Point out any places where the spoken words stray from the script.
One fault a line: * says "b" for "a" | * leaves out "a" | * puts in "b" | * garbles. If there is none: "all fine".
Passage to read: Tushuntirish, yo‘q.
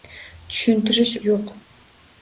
all fine